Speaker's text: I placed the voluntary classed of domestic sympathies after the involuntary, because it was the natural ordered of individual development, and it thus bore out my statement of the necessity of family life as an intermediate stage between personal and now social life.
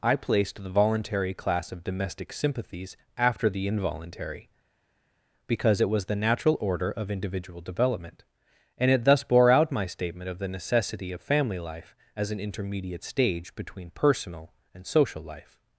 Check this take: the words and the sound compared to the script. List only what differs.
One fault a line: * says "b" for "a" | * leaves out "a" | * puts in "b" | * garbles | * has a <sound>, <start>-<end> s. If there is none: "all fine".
* says "class" for "classed"
* says "order" for "ordered"
* leaves out "now"